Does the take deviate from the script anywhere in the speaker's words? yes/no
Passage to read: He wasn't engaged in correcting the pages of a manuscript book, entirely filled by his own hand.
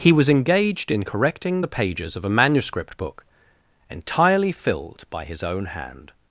yes